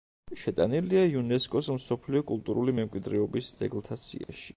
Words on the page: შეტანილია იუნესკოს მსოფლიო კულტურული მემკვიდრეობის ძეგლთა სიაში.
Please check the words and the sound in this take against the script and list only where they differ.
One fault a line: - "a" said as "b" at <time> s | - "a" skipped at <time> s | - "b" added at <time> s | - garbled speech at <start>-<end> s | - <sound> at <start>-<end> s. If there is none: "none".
- dropout at 4.2-4.3 s